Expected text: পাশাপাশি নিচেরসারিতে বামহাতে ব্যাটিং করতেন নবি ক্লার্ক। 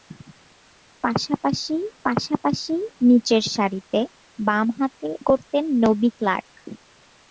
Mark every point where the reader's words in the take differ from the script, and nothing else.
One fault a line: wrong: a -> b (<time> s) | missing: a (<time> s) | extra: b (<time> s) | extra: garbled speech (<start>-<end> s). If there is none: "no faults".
extra: পাশাপাশি (2.0 s)
missing: ব্যাটিং (5.1 s)